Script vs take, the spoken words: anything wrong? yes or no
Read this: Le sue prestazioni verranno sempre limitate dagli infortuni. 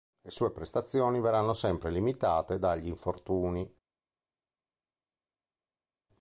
no